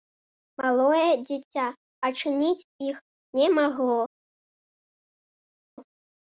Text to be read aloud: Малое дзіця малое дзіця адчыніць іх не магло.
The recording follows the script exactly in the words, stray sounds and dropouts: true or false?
false